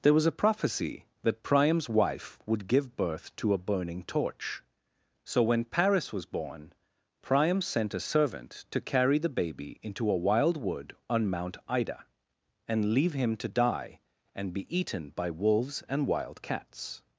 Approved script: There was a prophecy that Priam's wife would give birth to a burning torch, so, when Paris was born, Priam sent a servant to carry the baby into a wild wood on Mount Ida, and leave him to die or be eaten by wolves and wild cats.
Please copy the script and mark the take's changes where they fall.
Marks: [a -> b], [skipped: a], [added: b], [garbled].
There was a prophecy that Priam's wife would give birth to a burning torch, so, when Paris was born, Priam sent a servant to carry the baby into a wild wood on Mount Ida, and leave him to die [or -> and] be eaten by wolves and wild cats.